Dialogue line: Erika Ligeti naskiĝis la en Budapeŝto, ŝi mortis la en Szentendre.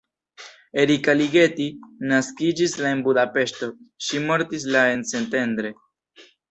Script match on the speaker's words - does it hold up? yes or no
yes